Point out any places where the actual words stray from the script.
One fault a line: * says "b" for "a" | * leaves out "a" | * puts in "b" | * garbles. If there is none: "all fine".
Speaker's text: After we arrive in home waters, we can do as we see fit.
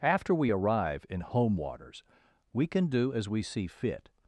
all fine